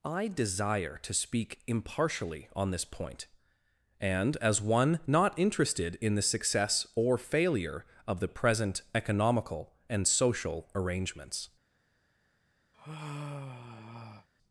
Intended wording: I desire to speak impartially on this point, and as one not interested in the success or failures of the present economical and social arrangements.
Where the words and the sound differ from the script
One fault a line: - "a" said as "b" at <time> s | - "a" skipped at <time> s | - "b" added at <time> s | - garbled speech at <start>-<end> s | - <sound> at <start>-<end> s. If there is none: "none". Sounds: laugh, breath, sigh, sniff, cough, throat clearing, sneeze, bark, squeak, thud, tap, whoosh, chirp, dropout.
- "failures" said as "failure" at 7.2 s
- sigh at 12.7-14.3 s